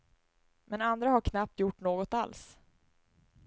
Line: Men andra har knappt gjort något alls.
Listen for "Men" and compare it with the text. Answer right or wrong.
right